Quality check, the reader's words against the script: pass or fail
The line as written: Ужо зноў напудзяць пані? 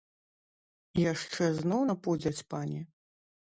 fail